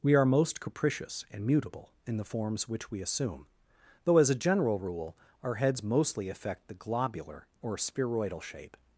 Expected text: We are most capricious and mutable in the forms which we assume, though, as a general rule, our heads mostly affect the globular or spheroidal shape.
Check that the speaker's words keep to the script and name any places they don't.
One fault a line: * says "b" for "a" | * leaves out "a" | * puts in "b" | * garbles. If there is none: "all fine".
all fine